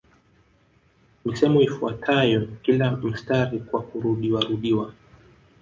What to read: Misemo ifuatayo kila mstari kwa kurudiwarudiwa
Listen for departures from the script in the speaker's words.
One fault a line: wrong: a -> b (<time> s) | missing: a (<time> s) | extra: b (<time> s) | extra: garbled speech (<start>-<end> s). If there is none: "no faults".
no faults